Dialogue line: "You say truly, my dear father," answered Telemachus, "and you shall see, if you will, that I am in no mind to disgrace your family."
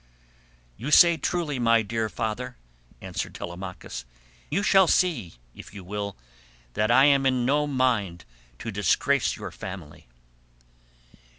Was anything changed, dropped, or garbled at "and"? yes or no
yes